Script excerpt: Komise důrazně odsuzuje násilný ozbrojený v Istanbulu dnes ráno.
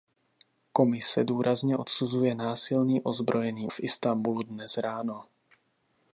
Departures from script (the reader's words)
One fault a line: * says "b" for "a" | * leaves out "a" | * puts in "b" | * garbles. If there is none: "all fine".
all fine